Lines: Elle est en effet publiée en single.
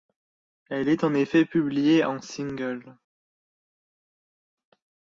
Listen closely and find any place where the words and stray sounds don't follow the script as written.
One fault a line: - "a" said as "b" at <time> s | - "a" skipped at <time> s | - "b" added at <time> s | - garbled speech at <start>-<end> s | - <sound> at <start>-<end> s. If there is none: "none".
none